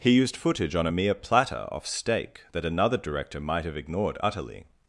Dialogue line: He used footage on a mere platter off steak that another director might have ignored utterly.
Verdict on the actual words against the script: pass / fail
pass